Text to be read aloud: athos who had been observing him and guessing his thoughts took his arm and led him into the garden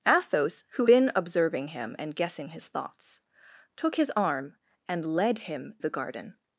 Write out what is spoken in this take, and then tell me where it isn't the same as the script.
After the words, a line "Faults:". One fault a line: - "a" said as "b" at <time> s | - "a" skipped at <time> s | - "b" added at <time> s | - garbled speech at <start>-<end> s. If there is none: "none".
athos who been observing him and guessing his thoughts took his arm and led him the garden
Faults:
- "had" skipped at 0.9 s
- "into" skipped at 5.8 s